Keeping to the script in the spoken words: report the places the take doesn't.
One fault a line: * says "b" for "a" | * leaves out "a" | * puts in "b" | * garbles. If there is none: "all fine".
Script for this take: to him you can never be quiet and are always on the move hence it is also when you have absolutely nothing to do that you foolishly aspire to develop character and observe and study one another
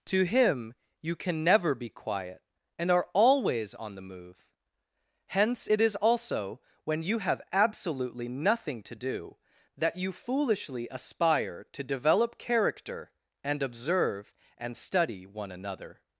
all fine